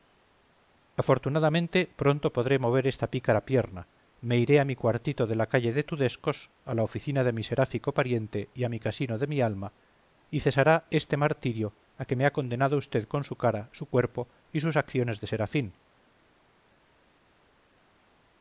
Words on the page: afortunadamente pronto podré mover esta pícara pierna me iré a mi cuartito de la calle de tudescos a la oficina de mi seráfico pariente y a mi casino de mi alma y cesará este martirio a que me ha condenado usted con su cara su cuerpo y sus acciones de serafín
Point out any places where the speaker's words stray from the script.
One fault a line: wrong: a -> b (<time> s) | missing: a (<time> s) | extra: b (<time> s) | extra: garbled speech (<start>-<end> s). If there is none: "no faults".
no faults